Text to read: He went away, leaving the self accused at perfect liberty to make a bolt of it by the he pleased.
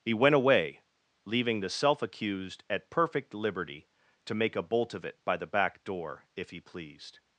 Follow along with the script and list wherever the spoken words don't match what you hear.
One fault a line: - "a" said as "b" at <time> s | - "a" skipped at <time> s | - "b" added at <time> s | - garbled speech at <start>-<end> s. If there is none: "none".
- "back door if" added at 5.5 s